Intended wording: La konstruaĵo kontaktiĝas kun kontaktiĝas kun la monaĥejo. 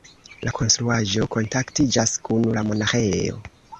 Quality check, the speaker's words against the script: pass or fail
fail